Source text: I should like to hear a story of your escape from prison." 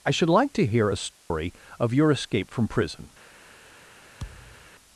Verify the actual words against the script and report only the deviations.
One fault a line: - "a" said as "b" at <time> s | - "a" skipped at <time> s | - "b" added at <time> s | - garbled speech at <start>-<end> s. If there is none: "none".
none